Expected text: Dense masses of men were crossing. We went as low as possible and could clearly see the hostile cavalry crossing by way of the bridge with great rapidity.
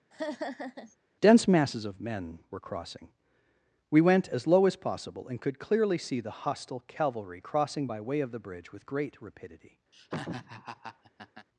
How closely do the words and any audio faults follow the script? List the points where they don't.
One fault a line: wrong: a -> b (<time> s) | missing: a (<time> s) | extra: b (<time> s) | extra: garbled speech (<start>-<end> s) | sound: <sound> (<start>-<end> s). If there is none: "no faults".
sound: laugh (0.1-1.0 s)
sound: laugh (9.9-11.5 s)